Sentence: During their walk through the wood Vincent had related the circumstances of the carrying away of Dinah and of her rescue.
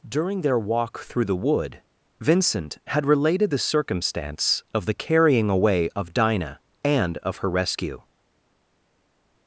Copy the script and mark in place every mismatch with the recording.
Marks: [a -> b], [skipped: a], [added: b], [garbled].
During their walk through the wood Vincent had related the [circumstances -> circumstance] of the carrying away of Dinah and of her rescue.